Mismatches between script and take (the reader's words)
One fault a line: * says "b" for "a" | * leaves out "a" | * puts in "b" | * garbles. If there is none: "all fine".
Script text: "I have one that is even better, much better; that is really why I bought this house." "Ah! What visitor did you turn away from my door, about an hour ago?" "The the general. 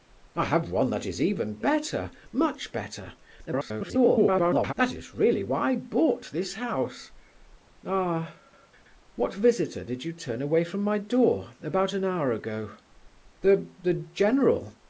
* garbles